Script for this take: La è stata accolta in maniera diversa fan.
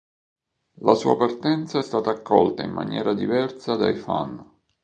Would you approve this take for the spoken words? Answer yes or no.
no